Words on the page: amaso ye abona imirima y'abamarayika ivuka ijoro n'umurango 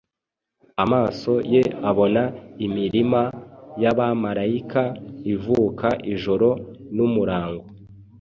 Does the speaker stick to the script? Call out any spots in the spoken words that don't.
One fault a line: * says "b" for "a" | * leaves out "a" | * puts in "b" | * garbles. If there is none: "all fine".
all fine